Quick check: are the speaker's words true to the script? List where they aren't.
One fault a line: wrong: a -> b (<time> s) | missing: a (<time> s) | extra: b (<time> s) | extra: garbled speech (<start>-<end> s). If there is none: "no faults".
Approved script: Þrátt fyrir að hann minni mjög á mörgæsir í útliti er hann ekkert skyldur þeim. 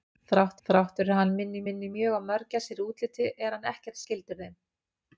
extra: þrátt (0.7 s)
extra: minni (1.7 s)